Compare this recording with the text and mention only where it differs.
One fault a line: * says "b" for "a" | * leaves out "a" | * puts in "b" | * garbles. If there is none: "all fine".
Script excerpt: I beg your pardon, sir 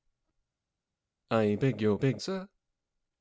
* says "beg" for "pardon"